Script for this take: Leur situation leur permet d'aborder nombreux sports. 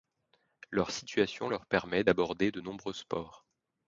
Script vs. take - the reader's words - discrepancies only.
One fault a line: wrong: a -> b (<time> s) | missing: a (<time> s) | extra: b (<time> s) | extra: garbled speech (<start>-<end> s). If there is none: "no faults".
extra: de (2.5 s)